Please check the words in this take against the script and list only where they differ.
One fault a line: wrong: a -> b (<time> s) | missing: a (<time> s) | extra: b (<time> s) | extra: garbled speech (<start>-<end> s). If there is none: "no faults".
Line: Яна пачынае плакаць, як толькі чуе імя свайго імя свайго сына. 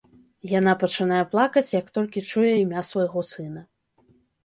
missing: імя свайго (3.3 s)